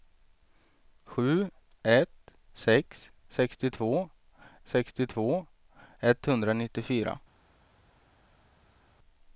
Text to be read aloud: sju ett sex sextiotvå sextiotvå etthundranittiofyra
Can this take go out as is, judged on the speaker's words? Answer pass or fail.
pass